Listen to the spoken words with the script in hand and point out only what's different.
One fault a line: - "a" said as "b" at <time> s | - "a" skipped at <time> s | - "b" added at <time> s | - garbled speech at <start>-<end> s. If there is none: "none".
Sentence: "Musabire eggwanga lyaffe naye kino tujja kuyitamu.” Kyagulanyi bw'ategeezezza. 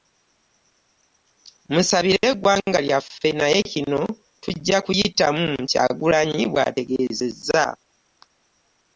none